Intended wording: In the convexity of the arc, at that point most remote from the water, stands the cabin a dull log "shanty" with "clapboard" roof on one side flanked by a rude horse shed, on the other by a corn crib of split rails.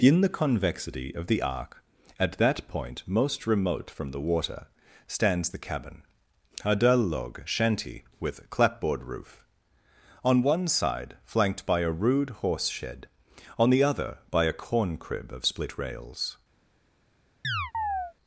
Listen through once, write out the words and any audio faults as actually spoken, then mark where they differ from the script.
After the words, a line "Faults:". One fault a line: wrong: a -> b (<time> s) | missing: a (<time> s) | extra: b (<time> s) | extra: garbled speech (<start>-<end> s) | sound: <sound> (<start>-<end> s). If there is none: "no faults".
In the convexity of the arc, at that point most remote from the water, stands the cabin a dull log "shanty" with "clapboard" roof on one side flanked by a rude horse shed, on the other by a corn crib of split rails.
Faults:
sound: chirp (17.4-18.1 s)